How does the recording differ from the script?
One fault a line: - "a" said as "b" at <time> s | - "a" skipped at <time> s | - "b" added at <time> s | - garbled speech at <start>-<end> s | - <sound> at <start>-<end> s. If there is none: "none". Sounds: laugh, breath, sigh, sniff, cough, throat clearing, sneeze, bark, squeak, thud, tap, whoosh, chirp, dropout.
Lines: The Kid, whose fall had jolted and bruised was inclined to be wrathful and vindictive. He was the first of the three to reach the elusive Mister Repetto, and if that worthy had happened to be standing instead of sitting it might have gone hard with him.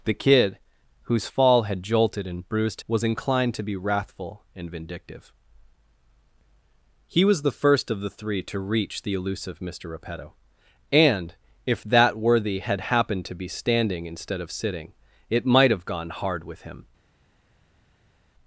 none